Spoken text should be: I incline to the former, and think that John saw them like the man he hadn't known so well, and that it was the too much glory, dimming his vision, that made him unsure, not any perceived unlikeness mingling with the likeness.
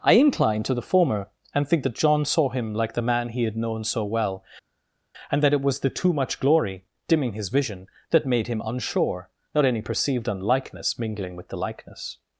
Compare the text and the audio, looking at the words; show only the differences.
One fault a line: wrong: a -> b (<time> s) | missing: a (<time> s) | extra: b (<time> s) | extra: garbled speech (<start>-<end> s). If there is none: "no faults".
wrong: them -> him (2.5 s)
wrong: hadn't -> had (3.4 s)